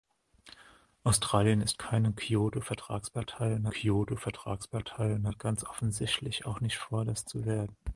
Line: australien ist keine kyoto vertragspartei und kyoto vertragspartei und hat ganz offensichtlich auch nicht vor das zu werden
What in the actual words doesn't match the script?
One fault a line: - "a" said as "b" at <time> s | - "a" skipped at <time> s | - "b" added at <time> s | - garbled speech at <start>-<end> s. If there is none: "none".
none